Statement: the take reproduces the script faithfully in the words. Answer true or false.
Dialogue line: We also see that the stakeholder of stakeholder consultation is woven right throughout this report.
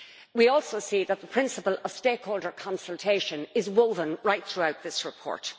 false